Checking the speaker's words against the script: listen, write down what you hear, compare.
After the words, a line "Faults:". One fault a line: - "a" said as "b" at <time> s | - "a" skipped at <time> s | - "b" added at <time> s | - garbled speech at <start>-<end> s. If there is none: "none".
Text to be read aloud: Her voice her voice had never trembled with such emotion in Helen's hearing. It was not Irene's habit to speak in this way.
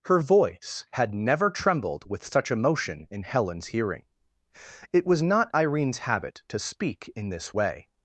Her voice had never trembled with such emotion in Helen's hearing. It was not Irene's habit to speak in this way.
Faults:
- "her voice" skipped at 0.8 s